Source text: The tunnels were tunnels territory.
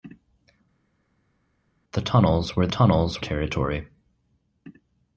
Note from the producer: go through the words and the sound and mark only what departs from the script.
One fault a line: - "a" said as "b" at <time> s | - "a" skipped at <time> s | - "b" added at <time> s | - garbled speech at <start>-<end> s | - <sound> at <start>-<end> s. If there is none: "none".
none